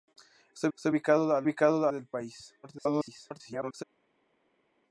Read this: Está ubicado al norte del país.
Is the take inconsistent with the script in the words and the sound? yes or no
yes